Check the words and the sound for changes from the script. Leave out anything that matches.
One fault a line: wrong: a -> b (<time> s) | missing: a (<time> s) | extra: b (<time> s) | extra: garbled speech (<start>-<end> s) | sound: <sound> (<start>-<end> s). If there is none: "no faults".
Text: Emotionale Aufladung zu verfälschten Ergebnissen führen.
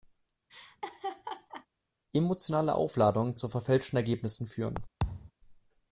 sound: laugh (0.5-1.7 s)
sound: thud (5.0-5.3 s)